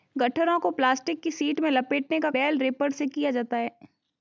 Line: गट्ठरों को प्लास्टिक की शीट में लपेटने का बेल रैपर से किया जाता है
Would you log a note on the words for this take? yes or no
no